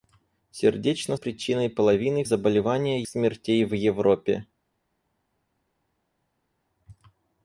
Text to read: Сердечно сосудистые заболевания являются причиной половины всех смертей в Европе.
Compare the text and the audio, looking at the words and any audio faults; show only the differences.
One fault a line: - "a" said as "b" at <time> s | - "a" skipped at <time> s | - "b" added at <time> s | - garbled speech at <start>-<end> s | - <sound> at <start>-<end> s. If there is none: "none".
- "сосудистые заболевания являются" skipped at 1.1 s
- "всех" said as "заболевания" at 2.2 s